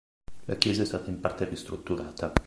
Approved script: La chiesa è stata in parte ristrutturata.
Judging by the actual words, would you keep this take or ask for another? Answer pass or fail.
pass